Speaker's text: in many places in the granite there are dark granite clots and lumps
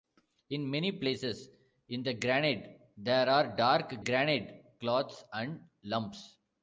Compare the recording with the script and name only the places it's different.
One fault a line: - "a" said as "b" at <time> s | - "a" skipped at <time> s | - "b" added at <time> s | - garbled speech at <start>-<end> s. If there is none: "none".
none